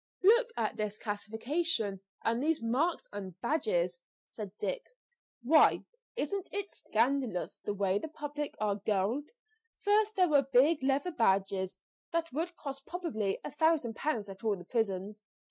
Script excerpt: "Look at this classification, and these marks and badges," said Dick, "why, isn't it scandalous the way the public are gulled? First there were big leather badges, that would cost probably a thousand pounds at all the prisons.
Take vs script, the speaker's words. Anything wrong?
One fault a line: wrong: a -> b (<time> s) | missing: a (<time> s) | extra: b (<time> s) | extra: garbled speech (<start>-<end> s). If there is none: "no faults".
no faults